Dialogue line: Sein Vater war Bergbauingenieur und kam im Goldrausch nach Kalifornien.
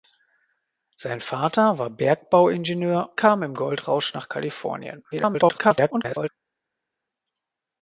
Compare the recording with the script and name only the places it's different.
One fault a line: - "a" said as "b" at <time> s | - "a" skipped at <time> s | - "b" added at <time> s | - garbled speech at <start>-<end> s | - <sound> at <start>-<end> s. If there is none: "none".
- "und" skipped at 3.1 s
- garbled speech at 5.1-6.3 s